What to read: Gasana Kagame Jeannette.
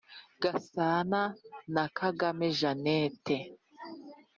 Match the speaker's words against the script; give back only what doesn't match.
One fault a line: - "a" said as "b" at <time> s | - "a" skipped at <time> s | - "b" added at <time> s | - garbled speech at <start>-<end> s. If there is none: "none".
- "na" added at 1.7 s